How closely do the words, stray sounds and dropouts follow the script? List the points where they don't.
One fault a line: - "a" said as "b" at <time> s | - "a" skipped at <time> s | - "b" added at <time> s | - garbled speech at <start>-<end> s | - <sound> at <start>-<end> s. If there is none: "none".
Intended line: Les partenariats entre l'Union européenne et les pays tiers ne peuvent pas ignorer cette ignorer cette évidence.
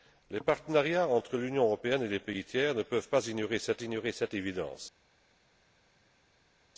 none